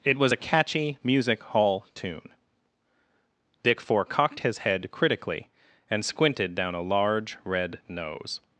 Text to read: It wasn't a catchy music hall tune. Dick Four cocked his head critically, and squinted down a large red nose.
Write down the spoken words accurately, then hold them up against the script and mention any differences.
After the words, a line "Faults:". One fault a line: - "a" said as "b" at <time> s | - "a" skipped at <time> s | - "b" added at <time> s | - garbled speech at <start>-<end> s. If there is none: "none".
It was a catchy music hall tune. Dick Four cocked his head critically, and squinted down a large red nose.
Faults:
- "wasn't" said as "was" at 0.2 s